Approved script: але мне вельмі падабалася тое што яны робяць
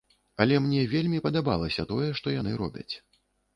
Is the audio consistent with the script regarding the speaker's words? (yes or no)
yes